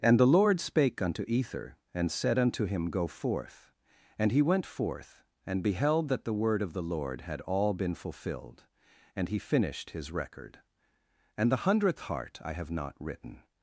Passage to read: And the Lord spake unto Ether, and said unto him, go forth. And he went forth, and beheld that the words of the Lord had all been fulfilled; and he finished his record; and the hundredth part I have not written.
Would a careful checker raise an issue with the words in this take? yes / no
yes